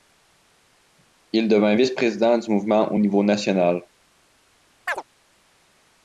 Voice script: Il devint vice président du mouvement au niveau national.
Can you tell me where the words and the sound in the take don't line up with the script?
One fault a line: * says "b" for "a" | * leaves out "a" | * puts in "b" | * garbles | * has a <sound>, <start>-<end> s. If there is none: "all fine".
* has a chirp, 4.9-5.0 s